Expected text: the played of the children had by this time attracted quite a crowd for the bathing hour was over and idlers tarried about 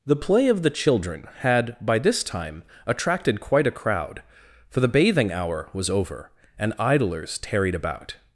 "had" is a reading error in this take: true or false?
false